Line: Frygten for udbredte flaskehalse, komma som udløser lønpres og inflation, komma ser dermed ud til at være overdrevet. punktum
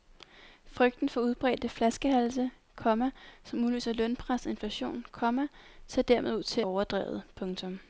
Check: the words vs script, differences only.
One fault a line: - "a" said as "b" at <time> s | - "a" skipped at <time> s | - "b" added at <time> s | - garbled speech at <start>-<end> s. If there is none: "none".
- "at være" skipped at 6.6 s